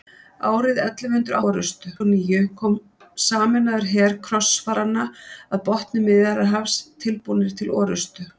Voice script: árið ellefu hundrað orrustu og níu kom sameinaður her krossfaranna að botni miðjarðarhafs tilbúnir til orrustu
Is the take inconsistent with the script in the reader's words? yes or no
no